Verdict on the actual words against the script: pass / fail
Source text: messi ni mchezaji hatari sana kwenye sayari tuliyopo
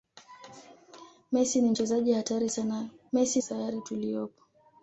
fail